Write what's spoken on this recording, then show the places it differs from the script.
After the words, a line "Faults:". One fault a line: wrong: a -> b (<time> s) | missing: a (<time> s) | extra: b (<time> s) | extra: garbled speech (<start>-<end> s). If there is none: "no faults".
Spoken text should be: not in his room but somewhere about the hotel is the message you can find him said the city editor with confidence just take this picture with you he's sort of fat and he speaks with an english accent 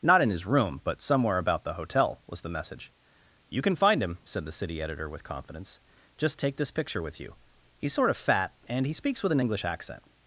not in his room but somewhere about the hotel was the message you can find him said the city editor with confidence just take this picture with you he's sort of fat and he speaks with an english accent
Faults:
wrong: is -> was (2.2 s)